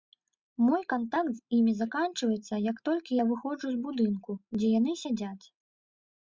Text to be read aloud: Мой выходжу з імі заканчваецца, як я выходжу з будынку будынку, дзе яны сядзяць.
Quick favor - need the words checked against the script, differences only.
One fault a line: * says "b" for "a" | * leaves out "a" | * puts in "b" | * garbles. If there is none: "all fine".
* says "кантакт" for "выходжу"
* puts in "толькі"
* leaves out "будынку"